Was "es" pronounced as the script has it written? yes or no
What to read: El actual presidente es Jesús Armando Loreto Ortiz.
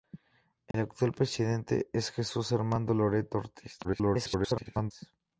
yes